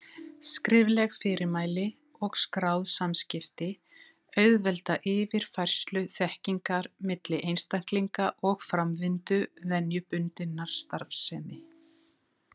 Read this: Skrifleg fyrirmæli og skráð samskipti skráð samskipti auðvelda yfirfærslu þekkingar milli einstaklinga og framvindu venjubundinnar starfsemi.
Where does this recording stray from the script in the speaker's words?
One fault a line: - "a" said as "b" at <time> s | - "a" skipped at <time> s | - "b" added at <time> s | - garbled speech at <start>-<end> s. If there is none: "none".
- "skráð samskipti" skipped at 3.7 s